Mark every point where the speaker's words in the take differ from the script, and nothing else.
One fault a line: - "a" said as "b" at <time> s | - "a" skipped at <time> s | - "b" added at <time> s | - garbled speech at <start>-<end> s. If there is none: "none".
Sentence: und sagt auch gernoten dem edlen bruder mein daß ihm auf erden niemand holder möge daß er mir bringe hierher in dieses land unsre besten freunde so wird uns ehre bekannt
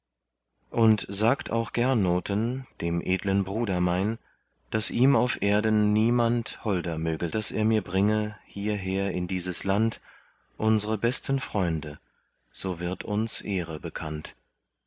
none